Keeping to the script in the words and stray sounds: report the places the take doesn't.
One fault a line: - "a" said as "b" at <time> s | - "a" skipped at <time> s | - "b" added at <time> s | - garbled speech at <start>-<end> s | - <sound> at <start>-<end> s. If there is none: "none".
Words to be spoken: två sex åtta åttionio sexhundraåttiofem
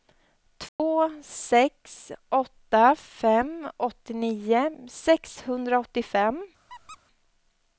- dropout at 0.7-0.8 s
- "fem" added at 3.0 s
- squeak at 6.7-7.0 s